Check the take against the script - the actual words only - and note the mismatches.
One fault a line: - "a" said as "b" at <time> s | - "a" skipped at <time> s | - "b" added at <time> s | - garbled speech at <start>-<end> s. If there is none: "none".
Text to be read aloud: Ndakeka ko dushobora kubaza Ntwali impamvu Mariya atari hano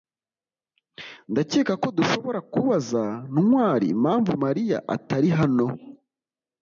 none